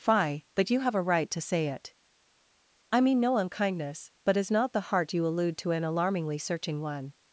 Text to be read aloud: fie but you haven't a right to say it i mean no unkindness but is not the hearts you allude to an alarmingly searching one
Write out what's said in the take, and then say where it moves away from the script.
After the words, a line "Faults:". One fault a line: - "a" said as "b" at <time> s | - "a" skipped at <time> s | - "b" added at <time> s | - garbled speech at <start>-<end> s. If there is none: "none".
fie but you have a right to say it i mean no unkindness but is not the heart you allude to an alarmingly searching one
Faults:
- "haven't" said as "have" at 0.8 s
- "hearts" said as "heart" at 4.8 s